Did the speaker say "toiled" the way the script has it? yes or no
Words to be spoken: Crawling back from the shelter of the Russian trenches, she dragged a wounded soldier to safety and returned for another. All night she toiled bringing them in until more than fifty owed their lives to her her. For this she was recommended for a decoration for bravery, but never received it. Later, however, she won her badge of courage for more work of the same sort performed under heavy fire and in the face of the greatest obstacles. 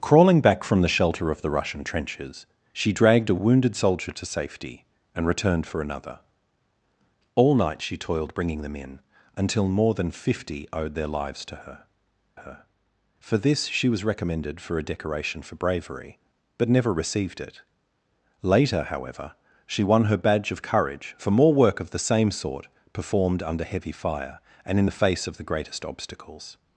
yes